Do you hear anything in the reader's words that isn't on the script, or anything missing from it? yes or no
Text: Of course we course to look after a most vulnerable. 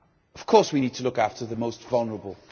yes